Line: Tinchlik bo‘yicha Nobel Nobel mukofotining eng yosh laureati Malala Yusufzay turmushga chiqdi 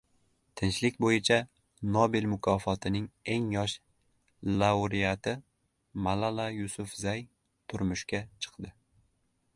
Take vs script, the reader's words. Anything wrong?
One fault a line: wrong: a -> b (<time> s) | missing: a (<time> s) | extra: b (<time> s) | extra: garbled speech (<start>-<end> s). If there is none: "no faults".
missing: Nobel (2.2 s)